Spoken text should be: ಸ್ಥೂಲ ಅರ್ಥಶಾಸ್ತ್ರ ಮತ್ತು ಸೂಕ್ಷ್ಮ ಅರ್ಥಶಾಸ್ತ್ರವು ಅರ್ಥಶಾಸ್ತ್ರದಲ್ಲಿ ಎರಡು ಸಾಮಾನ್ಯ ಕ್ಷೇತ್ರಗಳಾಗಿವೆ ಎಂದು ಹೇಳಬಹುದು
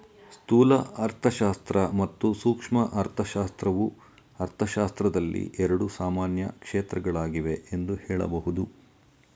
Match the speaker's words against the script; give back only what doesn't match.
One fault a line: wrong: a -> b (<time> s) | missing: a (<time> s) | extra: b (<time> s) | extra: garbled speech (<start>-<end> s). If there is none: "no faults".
no faults